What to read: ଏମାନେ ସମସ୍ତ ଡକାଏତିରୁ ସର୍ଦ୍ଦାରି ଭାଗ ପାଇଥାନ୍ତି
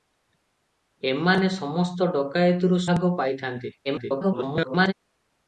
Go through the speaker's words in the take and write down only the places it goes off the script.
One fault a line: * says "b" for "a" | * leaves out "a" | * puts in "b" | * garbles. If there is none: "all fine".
* leaves out "ସର୍ଦ୍ଦାରି"
* garbles